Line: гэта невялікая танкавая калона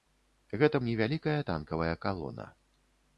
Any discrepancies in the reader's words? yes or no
no